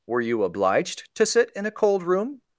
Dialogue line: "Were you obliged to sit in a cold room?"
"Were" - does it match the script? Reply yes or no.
yes